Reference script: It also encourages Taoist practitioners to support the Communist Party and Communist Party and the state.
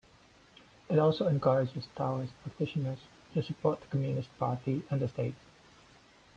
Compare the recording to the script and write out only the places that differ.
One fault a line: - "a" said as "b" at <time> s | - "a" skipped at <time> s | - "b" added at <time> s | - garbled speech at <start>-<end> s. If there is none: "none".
- "Communist Party and" skipped at 5.0 s